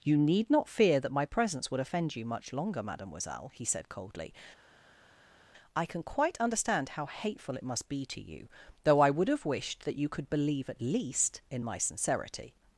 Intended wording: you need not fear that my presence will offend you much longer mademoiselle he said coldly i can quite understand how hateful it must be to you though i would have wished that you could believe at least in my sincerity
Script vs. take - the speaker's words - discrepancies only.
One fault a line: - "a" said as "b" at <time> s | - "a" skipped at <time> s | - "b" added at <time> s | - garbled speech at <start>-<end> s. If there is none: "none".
- "will" said as "would" at 1.7 s